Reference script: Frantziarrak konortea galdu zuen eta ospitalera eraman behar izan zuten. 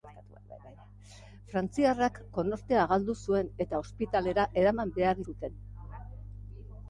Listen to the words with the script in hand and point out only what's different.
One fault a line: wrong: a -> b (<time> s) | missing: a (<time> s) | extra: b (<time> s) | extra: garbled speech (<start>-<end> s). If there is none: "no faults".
missing: izan (5.2 s)